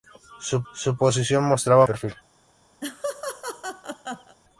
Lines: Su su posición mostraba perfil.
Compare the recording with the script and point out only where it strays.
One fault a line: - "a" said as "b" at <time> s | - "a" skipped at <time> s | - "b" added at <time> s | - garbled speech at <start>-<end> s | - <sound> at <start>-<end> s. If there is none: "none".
- laugh at 2.8-4.3 s